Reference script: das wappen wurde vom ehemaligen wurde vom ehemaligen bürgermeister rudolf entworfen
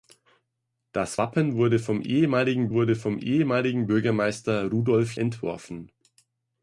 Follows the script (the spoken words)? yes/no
yes